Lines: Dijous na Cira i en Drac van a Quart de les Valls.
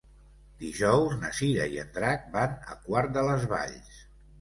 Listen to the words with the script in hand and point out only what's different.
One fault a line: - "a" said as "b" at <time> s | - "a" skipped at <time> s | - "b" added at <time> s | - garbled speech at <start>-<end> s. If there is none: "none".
none